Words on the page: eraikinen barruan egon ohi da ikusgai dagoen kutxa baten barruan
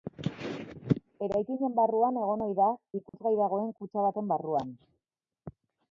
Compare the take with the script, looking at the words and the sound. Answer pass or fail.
fail